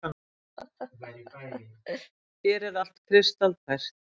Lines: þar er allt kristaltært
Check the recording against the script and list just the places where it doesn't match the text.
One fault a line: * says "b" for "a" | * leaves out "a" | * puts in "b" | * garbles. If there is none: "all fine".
* says "hér" for "þar"